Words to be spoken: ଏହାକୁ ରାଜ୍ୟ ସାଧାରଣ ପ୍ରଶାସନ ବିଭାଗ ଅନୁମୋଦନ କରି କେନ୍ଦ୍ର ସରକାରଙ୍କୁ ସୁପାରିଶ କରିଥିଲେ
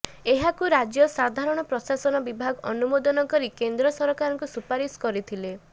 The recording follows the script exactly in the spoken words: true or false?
true